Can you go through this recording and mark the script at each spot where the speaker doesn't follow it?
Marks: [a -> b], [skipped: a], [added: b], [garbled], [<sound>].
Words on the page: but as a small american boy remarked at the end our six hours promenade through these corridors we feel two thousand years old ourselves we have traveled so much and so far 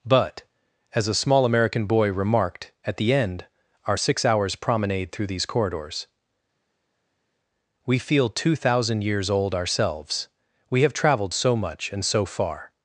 but as a small american boy remarked at the end our six hours promenade through these corridors we feel two thousand years old ourselves we have traveled so much and so far